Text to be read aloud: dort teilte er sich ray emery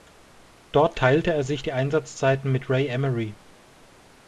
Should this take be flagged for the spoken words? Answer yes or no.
yes